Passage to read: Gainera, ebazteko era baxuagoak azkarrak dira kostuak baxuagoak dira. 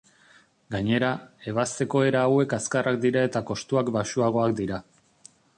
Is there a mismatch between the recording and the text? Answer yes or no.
yes